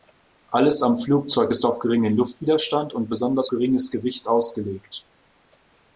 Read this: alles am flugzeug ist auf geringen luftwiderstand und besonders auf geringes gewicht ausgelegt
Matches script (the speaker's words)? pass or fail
fail